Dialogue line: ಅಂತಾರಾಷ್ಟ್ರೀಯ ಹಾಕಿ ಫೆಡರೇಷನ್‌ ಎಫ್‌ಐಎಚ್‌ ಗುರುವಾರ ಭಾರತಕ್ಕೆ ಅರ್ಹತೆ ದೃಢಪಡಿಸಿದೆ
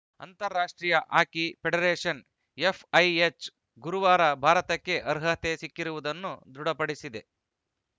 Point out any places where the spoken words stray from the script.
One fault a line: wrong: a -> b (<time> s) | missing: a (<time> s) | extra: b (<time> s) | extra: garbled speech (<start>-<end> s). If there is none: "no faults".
extra: ಸಿಕ್ಕಿರುವುದನ್ನು (5.6 s)